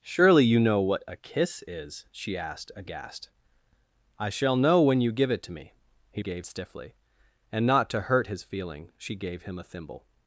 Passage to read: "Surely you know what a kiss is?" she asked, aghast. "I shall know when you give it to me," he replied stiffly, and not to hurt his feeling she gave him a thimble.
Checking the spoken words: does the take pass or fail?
fail